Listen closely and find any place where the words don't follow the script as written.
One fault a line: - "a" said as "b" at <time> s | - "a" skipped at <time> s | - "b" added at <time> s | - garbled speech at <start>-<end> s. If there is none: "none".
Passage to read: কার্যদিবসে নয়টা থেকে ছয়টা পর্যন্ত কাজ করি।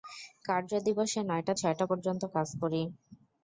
- "থেকে" skipped at 1.5 s